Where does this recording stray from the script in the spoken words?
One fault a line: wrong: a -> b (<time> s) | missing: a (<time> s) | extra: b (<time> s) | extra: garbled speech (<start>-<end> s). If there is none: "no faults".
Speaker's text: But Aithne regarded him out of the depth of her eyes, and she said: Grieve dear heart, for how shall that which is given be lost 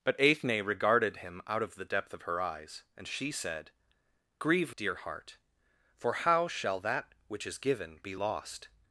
no faults